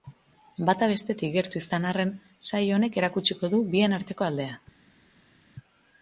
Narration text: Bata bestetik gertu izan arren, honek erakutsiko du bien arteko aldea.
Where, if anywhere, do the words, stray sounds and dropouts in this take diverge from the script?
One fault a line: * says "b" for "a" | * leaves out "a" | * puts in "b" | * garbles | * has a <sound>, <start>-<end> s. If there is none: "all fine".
* puts in "saio"